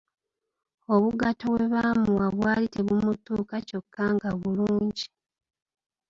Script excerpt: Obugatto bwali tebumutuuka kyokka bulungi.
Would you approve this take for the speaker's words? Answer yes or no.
no